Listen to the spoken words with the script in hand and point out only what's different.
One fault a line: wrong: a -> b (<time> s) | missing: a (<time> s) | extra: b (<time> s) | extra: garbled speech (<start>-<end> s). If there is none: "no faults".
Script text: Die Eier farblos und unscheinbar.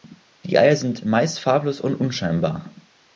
extra: sind meist (0.8 s)